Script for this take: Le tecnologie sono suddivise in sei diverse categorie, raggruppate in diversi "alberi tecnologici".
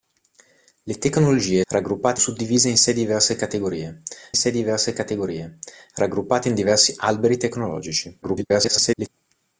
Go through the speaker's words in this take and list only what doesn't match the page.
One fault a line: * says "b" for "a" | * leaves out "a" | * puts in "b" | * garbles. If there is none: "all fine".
* says "raggruppate" for "sono"
* puts in "sei diverse categorie"
* garbles